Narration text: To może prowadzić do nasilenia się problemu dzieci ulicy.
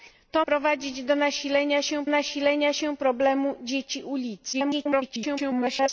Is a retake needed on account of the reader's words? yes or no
yes